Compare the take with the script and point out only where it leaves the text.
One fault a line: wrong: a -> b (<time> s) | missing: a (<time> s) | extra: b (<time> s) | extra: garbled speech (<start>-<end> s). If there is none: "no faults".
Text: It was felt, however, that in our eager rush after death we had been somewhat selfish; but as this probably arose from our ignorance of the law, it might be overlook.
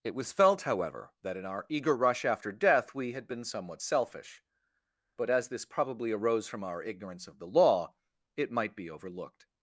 wrong: overlook -> overlooked (8.9 s)